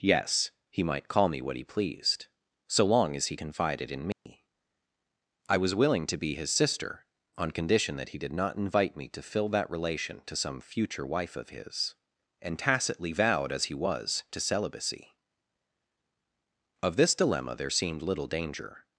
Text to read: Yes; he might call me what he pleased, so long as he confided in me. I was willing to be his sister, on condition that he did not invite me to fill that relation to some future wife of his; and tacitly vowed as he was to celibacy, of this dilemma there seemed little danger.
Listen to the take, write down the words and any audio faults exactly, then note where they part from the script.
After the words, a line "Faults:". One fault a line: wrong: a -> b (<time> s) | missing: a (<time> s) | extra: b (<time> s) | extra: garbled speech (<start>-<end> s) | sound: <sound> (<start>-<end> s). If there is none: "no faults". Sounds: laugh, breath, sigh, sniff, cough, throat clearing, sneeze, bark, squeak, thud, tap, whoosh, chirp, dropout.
Yes; he might call me what he pleased, so long as he confided in me. I was willing to be his sister, on condition that he did not invite me to fill that relation to some future wife of his; and tacitly vowed as he was to celibacy, of this dilemma there seemed little danger.
Faults:
sound: dropout (4.1-4.3 s)